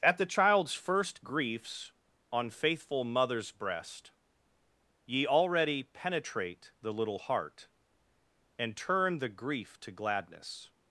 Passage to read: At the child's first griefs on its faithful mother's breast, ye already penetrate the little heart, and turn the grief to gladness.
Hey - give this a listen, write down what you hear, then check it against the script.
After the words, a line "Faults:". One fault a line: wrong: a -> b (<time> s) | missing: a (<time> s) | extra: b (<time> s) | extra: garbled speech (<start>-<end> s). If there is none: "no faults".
At the child's first griefs on faithful mother's breast, ye already penetrate the little heart, and turn the grief to gladness.
Faults:
missing: its (2.5 s)